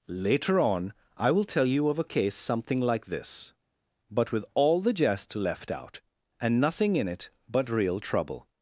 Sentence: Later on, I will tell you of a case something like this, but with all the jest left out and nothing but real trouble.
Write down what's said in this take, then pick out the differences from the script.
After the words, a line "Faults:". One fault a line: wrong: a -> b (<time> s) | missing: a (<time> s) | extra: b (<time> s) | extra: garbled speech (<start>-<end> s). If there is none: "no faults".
Later on, I will tell you of a case something like this, but with all the jest left out and nothing in it but real trouble.
Faults:
extra: in it (7.0 s)